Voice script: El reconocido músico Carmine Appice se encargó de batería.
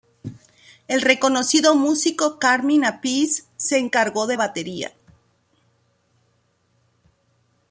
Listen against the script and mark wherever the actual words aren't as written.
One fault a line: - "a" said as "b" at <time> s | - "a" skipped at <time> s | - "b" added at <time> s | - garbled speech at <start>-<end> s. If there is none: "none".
none